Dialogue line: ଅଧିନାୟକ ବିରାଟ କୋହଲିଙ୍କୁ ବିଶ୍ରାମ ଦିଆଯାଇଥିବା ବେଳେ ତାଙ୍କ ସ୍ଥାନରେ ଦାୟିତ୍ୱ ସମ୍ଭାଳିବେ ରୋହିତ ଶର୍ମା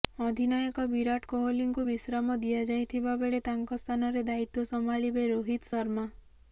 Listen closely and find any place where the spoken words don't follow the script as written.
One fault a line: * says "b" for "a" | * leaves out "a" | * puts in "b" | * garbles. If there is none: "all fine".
all fine